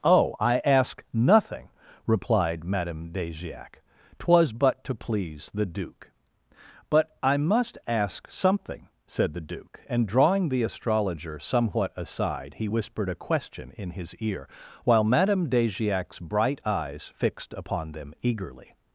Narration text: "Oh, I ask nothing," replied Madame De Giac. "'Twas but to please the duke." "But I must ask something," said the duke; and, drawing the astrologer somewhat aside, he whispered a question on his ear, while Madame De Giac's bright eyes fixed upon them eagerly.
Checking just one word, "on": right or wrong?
wrong